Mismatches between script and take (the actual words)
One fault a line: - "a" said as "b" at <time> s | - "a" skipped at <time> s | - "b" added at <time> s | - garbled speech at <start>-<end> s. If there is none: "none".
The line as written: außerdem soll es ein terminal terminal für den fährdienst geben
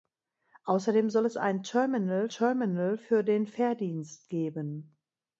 none